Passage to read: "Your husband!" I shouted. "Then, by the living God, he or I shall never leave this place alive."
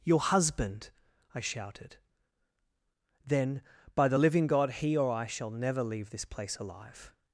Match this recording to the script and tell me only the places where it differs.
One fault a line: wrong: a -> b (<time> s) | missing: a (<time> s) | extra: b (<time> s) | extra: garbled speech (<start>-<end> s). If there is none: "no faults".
no faults